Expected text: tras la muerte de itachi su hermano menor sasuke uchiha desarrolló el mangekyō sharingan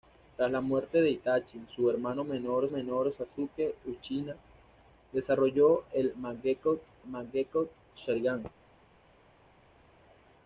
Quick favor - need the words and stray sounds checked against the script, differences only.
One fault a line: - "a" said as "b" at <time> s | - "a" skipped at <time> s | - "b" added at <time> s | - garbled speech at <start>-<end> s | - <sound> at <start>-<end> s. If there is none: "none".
- "menor" added at 2.7 s
- "mangekyō" added at 7.0 s